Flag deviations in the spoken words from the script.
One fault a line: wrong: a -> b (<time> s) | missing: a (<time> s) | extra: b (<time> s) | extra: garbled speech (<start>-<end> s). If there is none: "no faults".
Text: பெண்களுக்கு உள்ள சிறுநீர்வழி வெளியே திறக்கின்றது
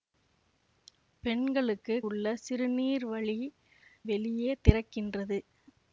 no faults